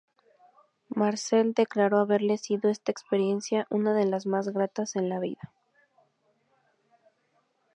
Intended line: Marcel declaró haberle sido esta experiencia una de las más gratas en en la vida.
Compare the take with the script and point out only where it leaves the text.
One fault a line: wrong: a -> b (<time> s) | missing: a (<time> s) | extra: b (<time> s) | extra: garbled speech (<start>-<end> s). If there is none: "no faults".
missing: en (5.1 s)